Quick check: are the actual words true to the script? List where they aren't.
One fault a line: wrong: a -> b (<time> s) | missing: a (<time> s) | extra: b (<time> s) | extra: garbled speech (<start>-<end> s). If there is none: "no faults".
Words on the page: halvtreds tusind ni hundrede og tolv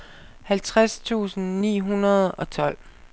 no faults